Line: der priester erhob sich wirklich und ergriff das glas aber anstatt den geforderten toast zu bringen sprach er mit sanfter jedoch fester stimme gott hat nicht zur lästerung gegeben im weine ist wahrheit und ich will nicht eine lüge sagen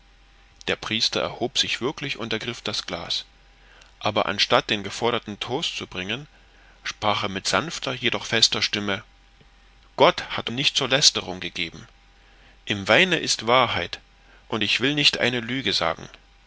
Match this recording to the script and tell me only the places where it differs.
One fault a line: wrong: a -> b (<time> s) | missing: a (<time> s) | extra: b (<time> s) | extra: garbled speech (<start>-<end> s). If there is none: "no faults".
no faults